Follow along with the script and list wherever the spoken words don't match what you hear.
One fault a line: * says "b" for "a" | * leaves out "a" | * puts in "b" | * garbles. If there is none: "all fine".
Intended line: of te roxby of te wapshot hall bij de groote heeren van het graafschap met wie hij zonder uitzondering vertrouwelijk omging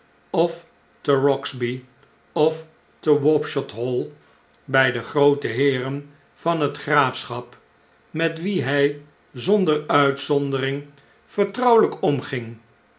all fine